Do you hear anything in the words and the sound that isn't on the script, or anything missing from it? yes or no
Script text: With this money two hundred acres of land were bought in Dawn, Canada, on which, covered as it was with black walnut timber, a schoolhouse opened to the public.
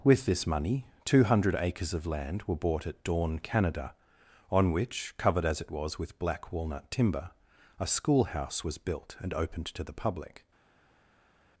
yes